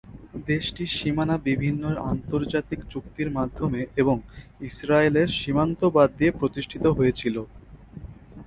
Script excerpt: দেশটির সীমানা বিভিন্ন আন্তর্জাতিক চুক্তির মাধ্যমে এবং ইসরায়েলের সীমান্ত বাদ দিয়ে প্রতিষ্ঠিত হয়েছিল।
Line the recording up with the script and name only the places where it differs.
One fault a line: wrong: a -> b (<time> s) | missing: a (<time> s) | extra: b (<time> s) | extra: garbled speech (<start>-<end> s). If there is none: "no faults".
no faults